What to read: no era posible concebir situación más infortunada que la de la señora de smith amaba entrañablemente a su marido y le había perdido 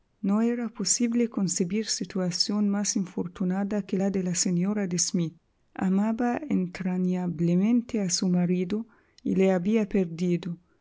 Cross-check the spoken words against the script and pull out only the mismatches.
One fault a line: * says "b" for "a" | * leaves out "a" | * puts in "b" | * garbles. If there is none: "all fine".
all fine